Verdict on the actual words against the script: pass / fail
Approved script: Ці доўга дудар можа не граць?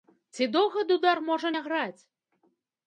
pass